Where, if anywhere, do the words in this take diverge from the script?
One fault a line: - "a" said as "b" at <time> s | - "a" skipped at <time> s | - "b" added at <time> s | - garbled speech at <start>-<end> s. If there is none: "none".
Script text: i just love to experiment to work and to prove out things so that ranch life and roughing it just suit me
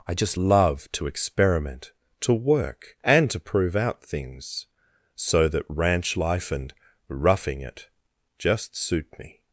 none